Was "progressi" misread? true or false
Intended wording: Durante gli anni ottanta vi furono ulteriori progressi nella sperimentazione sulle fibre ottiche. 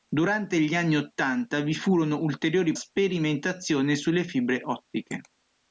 true